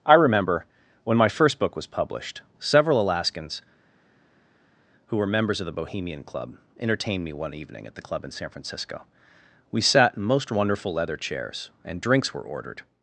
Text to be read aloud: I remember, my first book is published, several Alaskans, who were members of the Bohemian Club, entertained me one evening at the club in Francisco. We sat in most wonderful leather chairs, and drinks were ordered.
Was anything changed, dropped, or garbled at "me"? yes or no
no